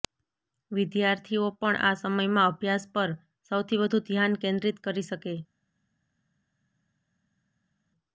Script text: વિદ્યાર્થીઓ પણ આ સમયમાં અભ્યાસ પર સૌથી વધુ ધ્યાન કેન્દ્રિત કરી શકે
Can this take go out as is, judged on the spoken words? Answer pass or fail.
pass